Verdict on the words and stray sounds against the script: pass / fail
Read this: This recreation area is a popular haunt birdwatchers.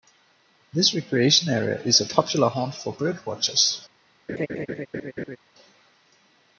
fail